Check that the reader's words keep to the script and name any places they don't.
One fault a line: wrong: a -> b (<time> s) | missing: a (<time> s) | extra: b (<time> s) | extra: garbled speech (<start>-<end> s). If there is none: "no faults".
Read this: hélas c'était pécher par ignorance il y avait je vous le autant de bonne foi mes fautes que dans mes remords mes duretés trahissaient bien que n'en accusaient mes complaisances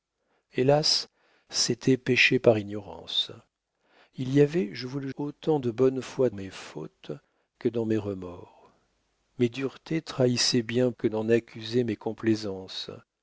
no faults